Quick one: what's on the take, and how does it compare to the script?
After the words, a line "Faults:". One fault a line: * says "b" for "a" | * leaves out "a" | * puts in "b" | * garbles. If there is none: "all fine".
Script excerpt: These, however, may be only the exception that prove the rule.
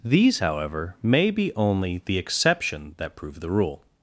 These, however, may be only the exception that prove the rule.
Faults:
all fine